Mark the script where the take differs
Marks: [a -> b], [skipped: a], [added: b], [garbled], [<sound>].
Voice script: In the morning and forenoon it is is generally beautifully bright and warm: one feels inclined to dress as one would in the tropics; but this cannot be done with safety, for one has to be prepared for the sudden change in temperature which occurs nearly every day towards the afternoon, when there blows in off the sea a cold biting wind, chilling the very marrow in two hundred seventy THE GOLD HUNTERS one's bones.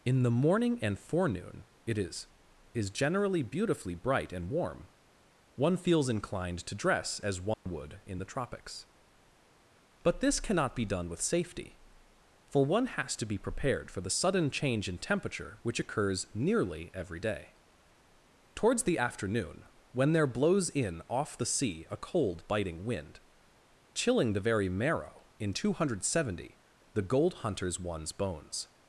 In the morning and forenoon it is is generally beautifully bright and warm: one feels inclined to dress as one [dropout] would in the tropics; but this cannot be done with safety, for one has to be prepared for the sudden change in temperature which occurs nearly every day towards the afternoon, when there blows in off the sea a cold biting wind, chilling the very marrow in two hundred seventy THE GOLD HUNTERS one's bones.